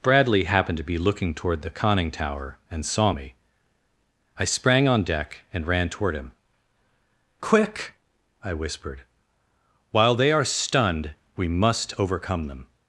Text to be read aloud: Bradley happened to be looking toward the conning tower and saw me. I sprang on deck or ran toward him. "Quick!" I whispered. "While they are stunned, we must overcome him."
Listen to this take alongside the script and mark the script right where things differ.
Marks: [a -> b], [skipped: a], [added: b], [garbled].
Bradley happened to be looking toward the conning tower and saw me. I sprang on deck [or -> and] ran toward him. "Quick!" I whispered. "While they are stunned, we must overcome [him." -> them]